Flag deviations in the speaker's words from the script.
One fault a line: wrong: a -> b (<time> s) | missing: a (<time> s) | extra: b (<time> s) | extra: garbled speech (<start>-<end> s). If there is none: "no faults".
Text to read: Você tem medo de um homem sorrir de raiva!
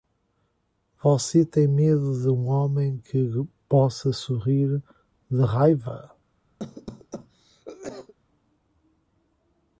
extra: que possa (3.0 s)